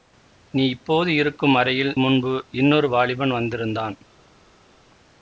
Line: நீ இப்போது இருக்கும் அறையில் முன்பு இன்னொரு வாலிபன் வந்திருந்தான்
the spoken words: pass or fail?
pass